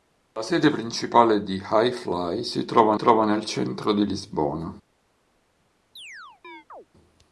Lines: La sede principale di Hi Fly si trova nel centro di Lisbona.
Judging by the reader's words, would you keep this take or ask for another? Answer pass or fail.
fail